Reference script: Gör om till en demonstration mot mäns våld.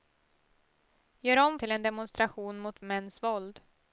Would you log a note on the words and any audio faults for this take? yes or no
no